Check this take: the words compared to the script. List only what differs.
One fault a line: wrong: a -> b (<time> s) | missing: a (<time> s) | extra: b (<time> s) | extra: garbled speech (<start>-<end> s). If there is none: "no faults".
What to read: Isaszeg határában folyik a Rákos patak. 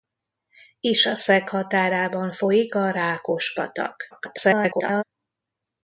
extra: garbled speech (4.1-5.0 s)